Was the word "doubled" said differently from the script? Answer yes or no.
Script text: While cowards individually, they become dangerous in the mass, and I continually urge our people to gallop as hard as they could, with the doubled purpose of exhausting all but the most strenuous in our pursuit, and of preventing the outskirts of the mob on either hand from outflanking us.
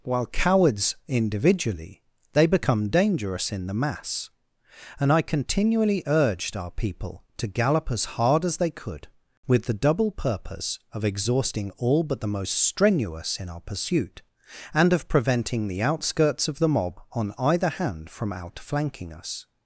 yes